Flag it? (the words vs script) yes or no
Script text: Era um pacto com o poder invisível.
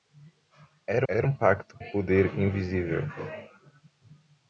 yes